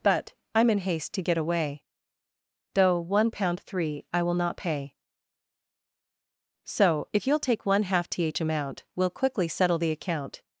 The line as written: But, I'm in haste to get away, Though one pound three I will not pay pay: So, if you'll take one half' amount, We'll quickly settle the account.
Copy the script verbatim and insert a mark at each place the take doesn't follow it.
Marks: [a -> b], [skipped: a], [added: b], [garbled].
But, I'm in haste to get away, Though one pound three I will not pay [skipped: pay:] So, if you'll take one half' [added: th] amount, We'll quickly settle the account.